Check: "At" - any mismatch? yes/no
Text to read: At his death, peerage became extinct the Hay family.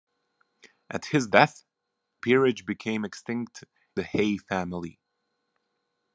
no